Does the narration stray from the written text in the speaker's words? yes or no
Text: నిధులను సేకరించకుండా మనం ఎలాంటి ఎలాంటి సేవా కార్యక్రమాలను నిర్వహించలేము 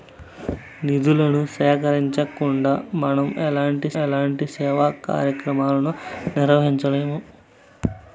no